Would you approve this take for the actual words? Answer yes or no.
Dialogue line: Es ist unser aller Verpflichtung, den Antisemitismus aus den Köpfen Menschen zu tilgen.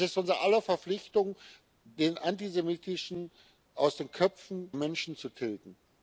yes